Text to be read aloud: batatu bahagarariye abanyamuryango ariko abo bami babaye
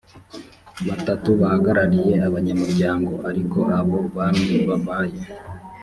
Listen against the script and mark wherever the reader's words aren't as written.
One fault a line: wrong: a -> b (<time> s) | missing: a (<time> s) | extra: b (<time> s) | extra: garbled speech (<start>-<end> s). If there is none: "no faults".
no faults